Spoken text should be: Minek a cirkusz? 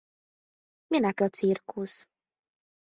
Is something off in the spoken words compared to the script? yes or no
no